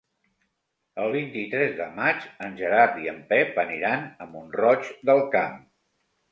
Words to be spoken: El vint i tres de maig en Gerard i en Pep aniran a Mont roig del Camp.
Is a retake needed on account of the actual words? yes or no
no